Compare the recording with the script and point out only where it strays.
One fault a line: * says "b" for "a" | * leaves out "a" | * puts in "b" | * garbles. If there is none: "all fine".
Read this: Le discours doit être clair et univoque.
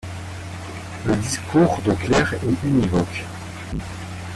* leaves out "être"